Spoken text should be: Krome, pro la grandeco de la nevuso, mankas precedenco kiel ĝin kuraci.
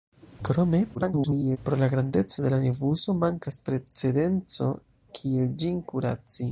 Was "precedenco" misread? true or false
false